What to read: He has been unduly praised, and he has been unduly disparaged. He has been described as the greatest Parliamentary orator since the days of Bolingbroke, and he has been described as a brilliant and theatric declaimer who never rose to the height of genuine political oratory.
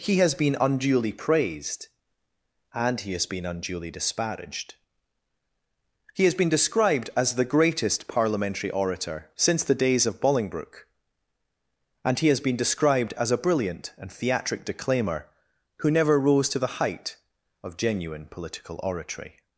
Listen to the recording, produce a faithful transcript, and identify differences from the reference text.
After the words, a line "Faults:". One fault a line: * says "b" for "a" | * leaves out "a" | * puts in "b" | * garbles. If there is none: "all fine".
He has been unduly praised, and he has been unduly disparaged. He has been described as the greatest Parliamentary orator since the days of Bolingbroke, and he has been described as a brilliant and theatric declaimer who never rose to the height of genuine political oratory.
Faults:
all fine